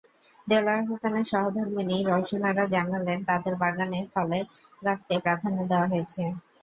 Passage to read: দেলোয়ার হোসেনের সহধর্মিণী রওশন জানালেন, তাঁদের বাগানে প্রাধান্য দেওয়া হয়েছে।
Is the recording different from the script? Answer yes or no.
yes